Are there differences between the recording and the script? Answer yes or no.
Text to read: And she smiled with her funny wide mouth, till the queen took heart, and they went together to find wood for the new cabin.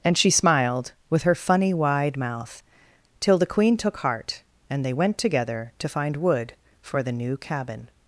no